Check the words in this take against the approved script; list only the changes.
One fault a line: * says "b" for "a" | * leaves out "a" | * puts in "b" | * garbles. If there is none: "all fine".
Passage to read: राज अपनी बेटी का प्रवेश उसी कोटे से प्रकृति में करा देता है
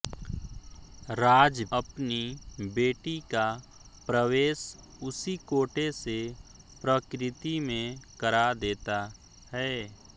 all fine